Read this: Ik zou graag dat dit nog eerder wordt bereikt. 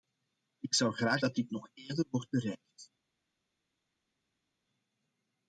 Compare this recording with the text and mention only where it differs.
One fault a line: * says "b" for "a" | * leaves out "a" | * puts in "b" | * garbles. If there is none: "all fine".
all fine